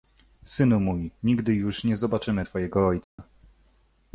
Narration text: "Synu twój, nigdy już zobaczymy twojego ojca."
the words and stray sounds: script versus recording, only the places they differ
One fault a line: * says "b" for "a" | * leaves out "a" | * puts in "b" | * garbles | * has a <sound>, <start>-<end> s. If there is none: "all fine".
* says "mój" for "twój"
* puts in "nie"
* has a dropout, 3.0-3.2 s